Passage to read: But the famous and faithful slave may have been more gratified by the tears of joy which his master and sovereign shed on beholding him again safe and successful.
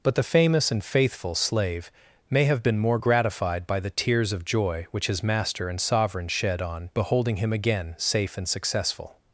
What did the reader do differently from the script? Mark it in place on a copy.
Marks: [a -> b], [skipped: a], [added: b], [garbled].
But the famous and faithful slave may have been more gratified by the tears of joy which his master and sovereign shed on beholding him again safe and successful.